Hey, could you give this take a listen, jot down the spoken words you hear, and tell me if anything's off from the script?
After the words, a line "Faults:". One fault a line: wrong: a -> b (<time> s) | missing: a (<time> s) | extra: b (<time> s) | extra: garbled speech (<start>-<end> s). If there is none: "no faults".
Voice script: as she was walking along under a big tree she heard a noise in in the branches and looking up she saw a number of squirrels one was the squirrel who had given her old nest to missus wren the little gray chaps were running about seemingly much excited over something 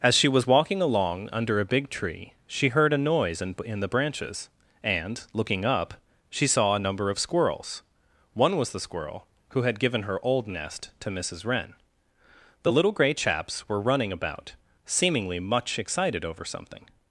as she was walking along under a big tree she heard a noise in in the branches and looking up she saw a number of squirrels one was the squirrel who had given her old nest to missus wren the little gray chaps were running about seemingly much excited over something
Faults:
no faults